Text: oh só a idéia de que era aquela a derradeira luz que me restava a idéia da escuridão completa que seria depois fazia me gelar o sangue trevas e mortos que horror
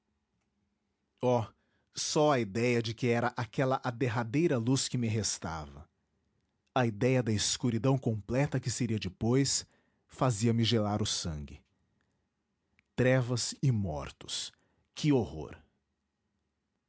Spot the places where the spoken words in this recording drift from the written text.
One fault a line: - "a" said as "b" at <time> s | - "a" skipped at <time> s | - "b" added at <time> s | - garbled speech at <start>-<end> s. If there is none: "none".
none